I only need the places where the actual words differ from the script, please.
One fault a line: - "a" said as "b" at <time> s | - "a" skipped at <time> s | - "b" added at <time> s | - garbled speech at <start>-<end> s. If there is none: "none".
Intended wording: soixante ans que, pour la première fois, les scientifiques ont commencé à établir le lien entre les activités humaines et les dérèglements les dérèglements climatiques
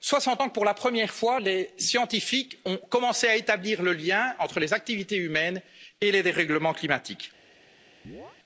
- "les dérèglements" skipped at 6.7 s